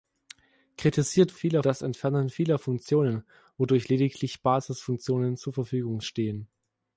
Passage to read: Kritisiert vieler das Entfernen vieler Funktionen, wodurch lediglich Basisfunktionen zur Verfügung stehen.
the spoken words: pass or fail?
pass